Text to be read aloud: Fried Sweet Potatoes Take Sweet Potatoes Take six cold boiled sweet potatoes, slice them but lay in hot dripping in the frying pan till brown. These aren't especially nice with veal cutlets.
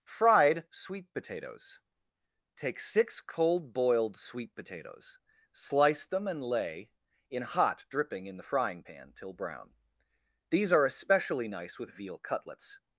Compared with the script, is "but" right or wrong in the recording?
wrong